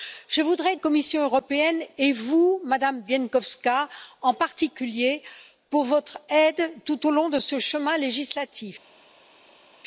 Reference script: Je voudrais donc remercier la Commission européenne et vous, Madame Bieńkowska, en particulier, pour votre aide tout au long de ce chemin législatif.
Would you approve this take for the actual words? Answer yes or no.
no